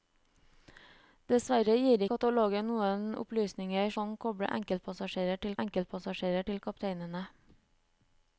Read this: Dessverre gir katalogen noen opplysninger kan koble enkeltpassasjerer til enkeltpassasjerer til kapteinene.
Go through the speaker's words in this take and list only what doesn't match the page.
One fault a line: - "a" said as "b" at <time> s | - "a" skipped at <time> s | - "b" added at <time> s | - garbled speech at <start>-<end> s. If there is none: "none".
none